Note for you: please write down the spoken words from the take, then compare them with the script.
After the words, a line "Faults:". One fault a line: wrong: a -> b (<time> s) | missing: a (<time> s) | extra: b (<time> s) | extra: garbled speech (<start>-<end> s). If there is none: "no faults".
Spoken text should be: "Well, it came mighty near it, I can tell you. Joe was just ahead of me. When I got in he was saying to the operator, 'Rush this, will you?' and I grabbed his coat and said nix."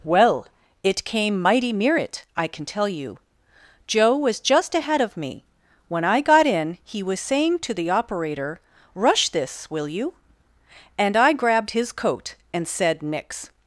"Well, it came mighty near it, I can tell you. Joe was just ahead of me. When I got in he was saying to the operator, 'Rush this, will you?' and I grabbed his coat and said nix."
Faults:
no faults